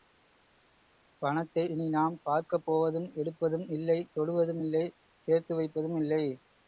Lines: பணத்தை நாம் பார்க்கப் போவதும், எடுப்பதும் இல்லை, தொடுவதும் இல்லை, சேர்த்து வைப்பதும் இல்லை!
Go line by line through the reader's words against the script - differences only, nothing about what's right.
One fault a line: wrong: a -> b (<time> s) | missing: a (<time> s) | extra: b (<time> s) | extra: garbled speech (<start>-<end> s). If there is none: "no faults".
extra: இனி (1.7 s)